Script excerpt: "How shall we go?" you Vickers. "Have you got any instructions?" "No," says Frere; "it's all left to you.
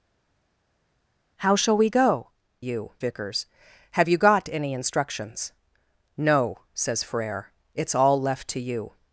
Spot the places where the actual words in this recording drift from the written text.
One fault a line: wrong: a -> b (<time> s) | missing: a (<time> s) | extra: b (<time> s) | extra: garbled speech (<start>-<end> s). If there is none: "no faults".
no faults